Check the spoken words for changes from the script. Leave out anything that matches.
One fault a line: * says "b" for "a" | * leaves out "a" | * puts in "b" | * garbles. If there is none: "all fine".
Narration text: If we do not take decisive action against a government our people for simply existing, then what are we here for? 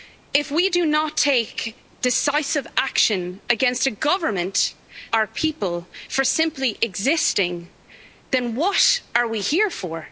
all fine